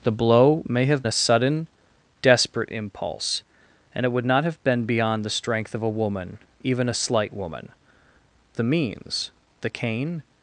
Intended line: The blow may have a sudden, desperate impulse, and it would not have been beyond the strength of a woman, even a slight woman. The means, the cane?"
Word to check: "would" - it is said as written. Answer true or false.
true